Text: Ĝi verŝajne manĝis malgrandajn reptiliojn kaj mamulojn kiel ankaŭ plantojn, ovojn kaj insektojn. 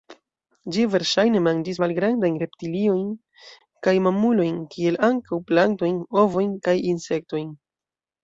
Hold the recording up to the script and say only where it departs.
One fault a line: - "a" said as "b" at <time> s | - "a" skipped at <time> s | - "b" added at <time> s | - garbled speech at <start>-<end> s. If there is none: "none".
none